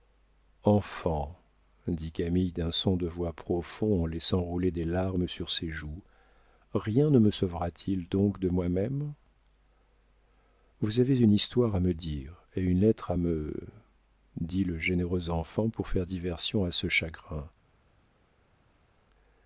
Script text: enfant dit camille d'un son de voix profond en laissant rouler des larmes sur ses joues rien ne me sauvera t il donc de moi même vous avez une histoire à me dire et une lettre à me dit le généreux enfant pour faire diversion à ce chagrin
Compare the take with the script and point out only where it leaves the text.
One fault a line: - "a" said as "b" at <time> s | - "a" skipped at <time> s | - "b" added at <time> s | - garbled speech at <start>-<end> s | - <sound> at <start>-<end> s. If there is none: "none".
none